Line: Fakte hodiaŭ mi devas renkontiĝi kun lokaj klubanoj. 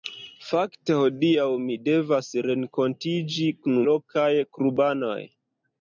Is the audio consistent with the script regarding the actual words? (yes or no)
yes